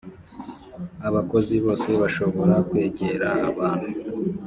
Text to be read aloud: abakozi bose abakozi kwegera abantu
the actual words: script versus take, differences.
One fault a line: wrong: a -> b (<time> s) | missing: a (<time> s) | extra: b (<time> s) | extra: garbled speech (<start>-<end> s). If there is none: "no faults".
wrong: abakozi -> bashobora (2.0 s)